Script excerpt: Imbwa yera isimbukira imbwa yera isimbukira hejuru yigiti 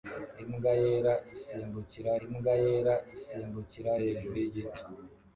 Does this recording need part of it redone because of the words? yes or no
no